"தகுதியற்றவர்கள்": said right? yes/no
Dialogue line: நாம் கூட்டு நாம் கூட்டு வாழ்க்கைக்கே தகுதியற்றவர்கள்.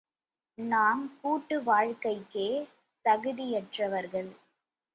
yes